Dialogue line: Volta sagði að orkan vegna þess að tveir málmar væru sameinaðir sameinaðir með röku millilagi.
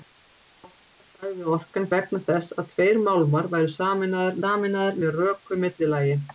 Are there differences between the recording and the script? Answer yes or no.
no